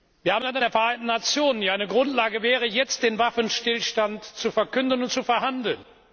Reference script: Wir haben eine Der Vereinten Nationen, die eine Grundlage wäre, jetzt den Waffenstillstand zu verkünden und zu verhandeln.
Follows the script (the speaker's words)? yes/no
yes